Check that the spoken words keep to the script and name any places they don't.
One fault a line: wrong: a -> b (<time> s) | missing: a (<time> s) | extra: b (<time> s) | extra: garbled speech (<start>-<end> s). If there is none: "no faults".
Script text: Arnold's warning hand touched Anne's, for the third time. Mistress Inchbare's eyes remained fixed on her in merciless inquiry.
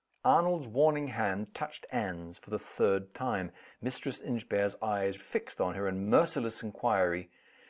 missing: remained (5.2 s)